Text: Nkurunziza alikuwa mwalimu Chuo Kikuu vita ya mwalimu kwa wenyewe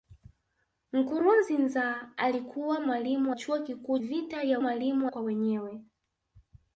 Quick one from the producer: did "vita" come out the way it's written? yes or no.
yes